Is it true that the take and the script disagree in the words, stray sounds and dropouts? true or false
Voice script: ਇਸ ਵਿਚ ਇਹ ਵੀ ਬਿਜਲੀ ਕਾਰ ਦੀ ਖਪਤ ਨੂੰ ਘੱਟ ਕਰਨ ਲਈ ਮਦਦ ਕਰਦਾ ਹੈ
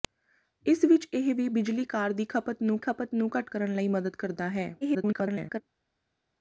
true